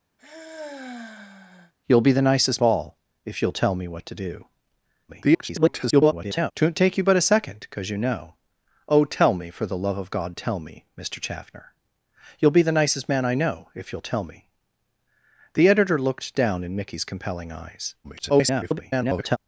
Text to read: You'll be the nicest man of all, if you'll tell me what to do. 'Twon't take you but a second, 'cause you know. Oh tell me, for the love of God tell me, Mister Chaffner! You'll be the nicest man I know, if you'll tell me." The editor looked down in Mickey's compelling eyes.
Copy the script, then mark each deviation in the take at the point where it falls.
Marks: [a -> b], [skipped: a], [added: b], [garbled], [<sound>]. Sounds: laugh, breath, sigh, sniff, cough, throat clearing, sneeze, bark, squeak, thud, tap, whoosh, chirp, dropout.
[sigh] You'll be the nicest [skipped: man of] all, if you'll tell me what to do. [garbled] 'Twon't take you but a second, 'cause you know. Oh tell me, for the love of God tell me, Mister Chaffner! You'll be the nicest man I know, if you'll tell me." The editor looked down in Mickey's compelling eyes. [garbled]